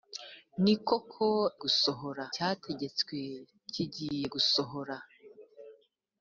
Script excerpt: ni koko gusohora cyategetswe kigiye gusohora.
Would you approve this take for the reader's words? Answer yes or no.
yes